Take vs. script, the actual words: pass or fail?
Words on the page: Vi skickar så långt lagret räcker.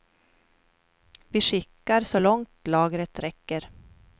pass